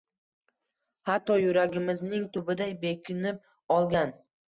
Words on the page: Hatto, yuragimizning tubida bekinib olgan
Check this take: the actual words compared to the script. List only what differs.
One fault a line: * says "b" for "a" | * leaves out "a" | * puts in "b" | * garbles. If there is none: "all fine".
all fine